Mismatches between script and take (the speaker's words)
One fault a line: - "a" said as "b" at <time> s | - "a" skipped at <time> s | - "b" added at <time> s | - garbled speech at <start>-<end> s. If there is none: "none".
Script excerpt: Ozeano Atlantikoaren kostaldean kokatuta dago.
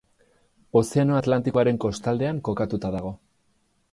none